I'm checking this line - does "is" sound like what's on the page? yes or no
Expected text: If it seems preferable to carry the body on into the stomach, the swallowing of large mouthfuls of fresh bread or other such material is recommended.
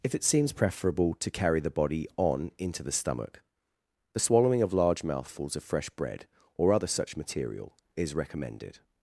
yes